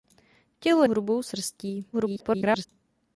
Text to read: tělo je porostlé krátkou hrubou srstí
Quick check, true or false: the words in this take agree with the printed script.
false